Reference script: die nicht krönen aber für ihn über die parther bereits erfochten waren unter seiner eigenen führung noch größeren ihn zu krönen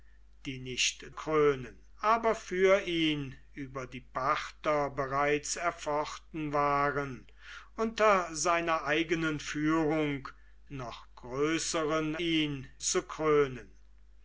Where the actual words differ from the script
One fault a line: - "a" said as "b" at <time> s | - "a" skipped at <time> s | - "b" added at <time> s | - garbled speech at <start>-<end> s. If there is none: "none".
none